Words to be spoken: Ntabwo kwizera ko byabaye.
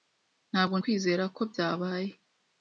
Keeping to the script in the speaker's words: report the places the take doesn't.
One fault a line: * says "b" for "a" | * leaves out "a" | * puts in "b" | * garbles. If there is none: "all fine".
all fine